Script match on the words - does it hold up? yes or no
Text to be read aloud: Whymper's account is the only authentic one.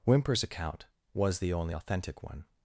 no